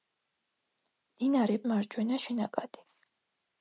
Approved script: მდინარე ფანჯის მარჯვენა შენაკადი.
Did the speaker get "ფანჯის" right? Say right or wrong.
wrong